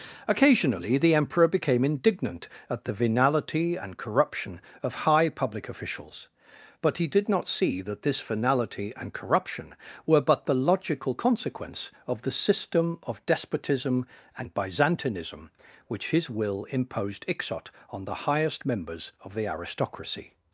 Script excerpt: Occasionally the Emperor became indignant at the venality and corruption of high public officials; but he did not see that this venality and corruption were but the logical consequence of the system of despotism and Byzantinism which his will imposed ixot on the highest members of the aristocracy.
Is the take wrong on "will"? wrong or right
right